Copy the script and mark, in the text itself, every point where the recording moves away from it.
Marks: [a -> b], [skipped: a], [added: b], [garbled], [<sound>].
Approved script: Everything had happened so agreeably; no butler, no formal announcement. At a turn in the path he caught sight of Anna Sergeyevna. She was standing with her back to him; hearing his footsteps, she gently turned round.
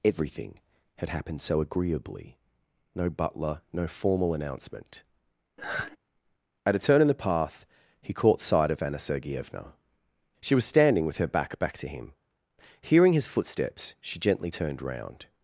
Everything had happened so agreeably; no butler, no formal announcement. [sigh] At a turn in the path he caught sight of Anna Sergeyevna. She was standing with her back [added: back] to him; hearing his footsteps, she gently turned round.